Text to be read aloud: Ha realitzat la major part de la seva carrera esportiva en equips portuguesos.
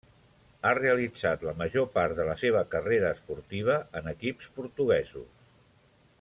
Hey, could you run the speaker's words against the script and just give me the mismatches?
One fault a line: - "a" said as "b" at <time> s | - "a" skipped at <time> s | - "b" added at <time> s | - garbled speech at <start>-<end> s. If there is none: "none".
none